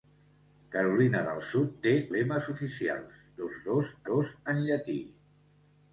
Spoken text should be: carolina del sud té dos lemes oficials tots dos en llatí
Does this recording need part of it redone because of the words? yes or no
yes